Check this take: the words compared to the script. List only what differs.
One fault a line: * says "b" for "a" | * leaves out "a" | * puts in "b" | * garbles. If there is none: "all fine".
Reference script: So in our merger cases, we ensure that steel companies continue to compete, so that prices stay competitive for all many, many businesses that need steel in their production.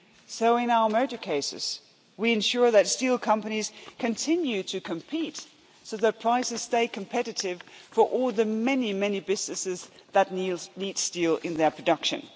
* puts in "the"